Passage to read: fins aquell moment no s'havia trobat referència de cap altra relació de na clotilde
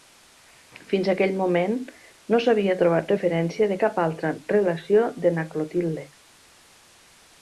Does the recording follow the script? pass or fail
pass